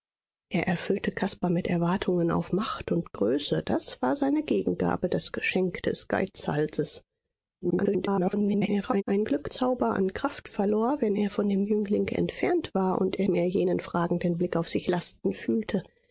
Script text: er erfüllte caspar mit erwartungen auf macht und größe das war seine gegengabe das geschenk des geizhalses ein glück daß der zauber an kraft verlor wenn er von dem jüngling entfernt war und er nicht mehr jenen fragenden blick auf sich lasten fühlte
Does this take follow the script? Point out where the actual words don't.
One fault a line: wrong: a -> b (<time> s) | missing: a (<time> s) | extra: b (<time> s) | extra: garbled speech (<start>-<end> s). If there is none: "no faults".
extra: garbled speech (7.6-9.0 s)
missing: daß der (9.5 s)
missing: nicht (13.3 s)